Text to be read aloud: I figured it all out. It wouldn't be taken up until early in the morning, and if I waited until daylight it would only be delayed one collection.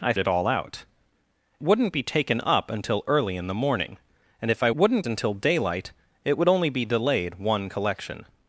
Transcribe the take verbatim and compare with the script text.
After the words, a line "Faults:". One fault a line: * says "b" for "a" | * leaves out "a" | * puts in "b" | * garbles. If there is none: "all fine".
I it all out. Wouldn't be taken up until early in the morning, and if I wouldn't until daylight it would only be delayed one collection.
Faults:
* leaves out "figured"
* leaves out "It"
* says "wouldn't" for "waited"